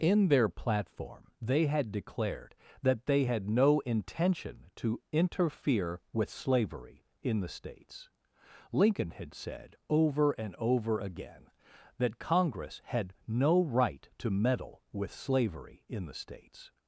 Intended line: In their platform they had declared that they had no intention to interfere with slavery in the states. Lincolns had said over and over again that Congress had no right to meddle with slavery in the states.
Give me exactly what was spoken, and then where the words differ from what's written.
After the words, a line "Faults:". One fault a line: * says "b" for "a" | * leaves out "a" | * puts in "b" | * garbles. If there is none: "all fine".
In their platform they had declared that they had no intention to interfere with slavery in the states. Lincoln had said over and over again that Congress had no right to meddle with slavery in the states.
Faults:
* says "Lincoln" for "Lincolns"